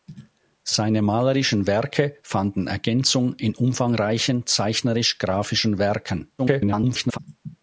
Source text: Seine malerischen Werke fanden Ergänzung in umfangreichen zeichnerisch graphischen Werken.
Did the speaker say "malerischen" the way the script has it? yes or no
yes